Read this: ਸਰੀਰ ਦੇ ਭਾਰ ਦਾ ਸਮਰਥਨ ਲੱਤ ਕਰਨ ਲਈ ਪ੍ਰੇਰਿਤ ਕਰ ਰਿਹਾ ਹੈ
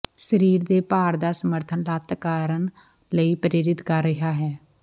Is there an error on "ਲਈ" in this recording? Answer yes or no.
no